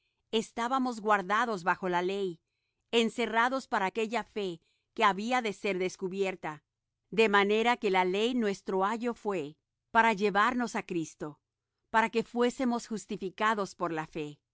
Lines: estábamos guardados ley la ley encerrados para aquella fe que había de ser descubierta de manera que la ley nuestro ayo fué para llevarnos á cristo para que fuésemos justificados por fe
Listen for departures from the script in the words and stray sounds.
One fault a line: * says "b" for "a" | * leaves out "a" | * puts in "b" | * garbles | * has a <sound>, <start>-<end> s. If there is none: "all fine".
* says "bajo" for "ley"
* puts in "la"